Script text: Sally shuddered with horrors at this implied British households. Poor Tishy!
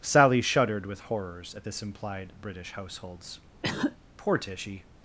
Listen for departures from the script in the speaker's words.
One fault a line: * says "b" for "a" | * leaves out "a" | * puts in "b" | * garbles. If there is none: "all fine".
all fine